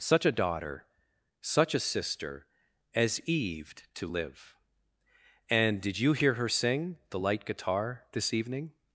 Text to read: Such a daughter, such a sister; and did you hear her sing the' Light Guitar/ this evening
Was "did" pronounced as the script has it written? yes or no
yes